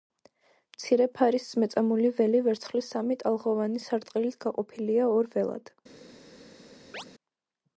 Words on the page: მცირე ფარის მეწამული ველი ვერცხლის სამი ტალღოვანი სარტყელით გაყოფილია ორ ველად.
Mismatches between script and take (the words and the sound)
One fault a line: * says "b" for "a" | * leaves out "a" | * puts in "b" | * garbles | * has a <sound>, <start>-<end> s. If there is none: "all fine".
* has a chirp, 6.9-7.0 s